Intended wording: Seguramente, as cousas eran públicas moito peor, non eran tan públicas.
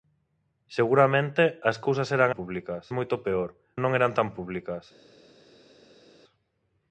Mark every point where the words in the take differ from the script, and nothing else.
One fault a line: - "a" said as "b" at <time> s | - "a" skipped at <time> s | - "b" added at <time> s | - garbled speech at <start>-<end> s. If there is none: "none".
none